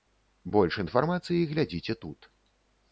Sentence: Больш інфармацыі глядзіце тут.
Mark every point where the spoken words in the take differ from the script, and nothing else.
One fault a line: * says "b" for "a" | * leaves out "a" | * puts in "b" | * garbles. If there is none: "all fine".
all fine